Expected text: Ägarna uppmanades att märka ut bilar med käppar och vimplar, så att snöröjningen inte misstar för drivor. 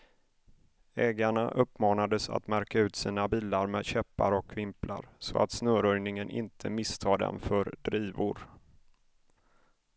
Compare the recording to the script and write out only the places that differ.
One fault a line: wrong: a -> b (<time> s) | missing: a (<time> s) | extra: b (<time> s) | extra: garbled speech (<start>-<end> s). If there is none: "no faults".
extra: sina (3.0 s)
extra: dem (7.2 s)